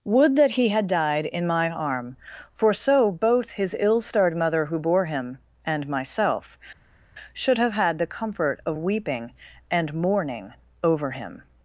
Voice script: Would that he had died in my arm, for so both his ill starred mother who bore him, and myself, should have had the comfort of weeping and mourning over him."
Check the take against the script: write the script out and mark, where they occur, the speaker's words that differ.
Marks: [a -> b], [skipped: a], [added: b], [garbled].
Would that he had died in my arm, for so both his ill starred mother who bore him, and myself, should have had the comfort of weeping and mourning over him."